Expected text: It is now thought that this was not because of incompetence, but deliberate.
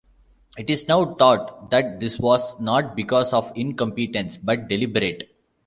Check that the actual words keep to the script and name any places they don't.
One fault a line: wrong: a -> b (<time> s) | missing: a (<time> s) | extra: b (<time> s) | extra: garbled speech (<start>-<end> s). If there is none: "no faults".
no faults